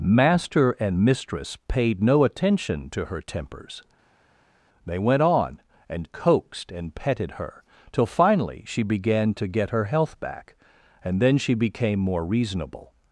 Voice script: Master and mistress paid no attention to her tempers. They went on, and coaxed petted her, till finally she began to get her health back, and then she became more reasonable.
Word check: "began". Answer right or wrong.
right